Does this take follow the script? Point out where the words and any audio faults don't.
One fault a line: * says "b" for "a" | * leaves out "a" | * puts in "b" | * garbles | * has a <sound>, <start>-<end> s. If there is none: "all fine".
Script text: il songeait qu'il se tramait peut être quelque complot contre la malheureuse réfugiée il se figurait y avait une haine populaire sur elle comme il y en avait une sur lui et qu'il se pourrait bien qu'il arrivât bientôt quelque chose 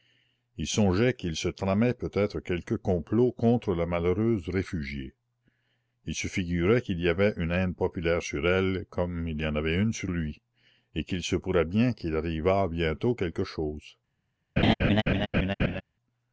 * puts in "qu'il"
* has a laugh, 14.6-15.8 s